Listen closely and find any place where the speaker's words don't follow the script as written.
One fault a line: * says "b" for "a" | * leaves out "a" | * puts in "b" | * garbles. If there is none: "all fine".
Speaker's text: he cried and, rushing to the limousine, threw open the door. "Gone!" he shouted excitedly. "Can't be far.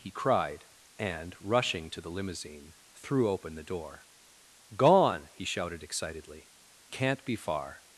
all fine